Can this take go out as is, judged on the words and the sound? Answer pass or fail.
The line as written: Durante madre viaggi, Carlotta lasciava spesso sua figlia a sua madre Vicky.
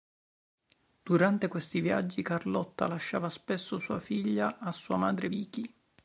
fail